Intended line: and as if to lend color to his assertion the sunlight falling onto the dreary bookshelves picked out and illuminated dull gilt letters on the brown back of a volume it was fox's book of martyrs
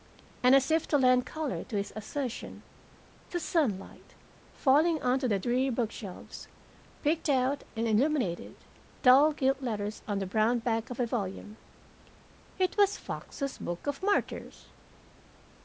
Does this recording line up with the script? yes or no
yes